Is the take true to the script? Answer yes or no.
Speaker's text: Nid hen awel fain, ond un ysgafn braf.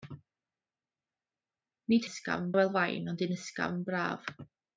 no